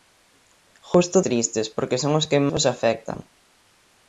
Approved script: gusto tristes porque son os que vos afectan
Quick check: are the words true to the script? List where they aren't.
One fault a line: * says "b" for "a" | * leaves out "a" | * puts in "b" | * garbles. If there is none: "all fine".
all fine